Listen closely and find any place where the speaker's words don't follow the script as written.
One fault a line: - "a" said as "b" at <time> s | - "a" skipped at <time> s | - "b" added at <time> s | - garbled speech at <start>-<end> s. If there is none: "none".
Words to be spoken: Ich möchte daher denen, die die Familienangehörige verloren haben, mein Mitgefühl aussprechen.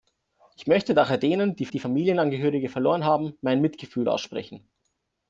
none